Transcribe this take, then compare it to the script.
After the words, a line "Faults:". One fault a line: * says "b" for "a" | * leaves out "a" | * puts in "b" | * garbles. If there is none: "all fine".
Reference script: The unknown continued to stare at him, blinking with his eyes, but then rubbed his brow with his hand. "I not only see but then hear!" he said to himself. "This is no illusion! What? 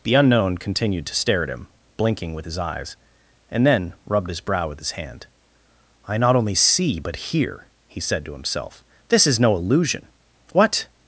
The unknown continued to stare at him, blinking with his eyes, and then rubbed his brow with his hand. "I not only see but hear!" he said to himself. "This is no illusion! What?
Faults:
* says "and" for "but"
* leaves out "then"